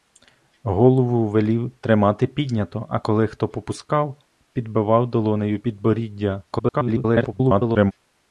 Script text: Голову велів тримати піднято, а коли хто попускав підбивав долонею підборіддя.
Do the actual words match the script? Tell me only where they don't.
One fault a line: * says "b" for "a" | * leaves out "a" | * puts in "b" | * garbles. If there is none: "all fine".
* garbles